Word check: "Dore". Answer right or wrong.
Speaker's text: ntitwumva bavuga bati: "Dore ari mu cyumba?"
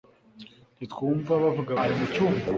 wrong